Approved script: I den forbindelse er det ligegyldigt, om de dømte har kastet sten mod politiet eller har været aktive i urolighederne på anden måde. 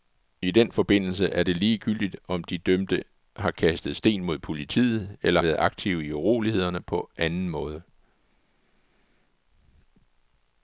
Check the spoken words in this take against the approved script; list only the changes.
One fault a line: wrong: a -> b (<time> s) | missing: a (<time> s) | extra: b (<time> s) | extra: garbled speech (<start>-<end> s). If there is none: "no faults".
missing: har (5.4 s)